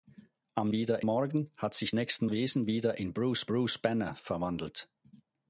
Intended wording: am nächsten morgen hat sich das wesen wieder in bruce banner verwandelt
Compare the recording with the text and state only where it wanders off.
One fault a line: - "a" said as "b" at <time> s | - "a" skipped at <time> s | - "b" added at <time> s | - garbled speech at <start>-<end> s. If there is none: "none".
- "nächsten" said as "wieder" at 0.7 s
- "das" said as "nächsten" at 1.9 s
- "bruce" added at 3.5 s